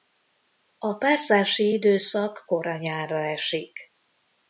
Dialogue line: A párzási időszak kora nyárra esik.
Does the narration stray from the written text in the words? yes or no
no